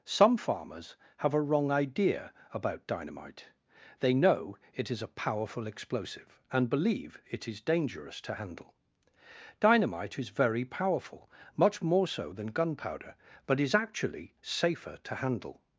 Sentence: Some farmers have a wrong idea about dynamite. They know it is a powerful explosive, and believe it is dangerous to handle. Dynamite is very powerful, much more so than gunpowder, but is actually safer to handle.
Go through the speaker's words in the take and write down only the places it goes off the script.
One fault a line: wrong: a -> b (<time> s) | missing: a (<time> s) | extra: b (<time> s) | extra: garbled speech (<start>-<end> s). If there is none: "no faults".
no faults